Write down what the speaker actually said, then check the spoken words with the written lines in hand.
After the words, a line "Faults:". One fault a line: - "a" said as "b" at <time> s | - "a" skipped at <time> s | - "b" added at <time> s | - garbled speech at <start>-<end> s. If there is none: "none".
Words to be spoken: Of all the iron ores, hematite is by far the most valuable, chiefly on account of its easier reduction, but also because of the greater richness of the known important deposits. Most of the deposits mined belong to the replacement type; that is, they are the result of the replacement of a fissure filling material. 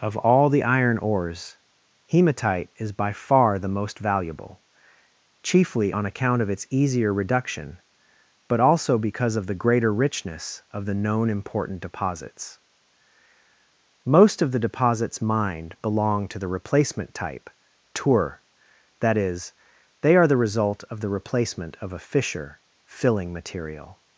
Of all the iron ores, hematite is by far the most valuable, chiefly on account of its easier reduction, but also because of the greater richness of the known important deposits. Most of the deposits mined belong to the replacement type; tour that is, they are the result of the replacement of a fissure filling material.
Faults:
- "tour" added at 17.9 s